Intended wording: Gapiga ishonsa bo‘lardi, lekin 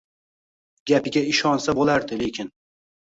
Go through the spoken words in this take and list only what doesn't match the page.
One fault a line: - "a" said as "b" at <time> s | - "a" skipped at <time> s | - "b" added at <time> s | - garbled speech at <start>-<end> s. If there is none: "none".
none